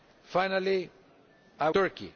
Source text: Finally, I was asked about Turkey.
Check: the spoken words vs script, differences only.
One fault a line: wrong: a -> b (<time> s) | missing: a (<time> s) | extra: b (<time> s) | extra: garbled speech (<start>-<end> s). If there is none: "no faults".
missing: was asked about (1.7 s)